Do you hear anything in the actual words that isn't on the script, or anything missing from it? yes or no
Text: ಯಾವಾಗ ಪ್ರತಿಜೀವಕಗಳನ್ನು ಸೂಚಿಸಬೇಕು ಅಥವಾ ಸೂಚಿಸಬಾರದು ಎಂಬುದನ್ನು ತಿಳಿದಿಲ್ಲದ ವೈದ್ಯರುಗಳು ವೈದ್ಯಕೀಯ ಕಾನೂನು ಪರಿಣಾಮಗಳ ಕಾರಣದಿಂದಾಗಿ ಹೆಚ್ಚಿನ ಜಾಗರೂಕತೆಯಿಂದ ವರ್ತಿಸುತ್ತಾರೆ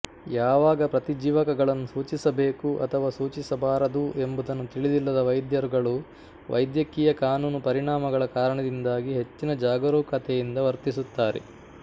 no